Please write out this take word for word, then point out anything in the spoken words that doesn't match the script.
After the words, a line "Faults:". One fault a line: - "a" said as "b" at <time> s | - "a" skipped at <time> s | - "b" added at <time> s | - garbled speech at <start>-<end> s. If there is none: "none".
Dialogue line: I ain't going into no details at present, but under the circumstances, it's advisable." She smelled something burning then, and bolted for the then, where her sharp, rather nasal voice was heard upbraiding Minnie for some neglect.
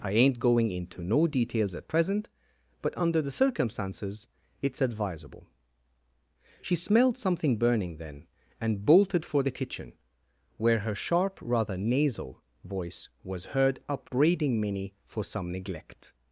I ain't going into no details at present, but under the circumstances, it's advisable." She smelled something burning then, and bolted for the kitchen, where her sharp, rather nasal voice was heard upbraiding Minnie for some neglect.
Faults:
- "then" said as "kitchen" at 9.6 s